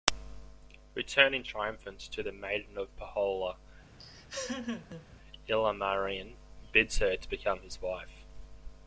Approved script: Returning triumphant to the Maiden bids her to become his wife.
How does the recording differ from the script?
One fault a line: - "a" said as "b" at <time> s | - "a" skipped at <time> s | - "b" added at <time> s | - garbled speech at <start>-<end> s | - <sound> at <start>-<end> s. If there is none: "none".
- "of Pohjola Ilmarinen" added at 2.8 s
- laugh at 4.0-5.1 s